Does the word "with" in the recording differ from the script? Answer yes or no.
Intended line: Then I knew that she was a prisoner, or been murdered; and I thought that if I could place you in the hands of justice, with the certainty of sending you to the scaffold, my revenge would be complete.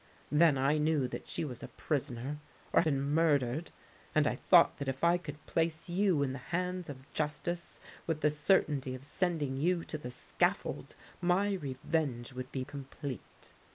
no